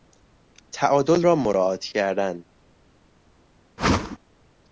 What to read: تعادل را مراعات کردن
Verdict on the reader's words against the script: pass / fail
pass